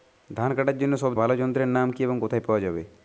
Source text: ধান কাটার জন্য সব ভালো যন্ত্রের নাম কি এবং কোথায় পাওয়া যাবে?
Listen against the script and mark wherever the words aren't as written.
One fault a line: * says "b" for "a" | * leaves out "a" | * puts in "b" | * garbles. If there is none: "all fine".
all fine